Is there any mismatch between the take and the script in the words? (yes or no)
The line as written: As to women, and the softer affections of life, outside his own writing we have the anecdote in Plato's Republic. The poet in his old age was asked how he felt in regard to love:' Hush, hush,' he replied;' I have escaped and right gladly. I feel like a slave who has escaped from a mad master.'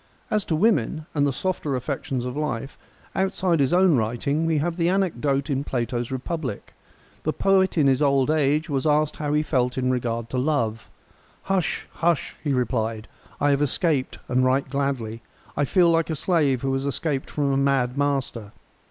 no